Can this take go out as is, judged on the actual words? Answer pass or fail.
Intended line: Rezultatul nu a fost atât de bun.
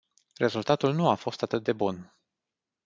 pass